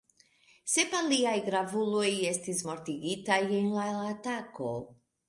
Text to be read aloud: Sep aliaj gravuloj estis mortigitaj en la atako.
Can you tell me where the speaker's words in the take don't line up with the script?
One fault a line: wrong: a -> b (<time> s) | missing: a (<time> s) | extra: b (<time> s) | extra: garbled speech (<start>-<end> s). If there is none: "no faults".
no faults